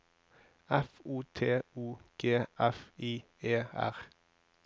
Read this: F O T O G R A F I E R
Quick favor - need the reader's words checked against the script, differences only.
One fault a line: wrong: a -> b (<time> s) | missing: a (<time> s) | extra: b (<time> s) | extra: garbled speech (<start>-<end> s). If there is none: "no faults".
missing: R A (2.4 s)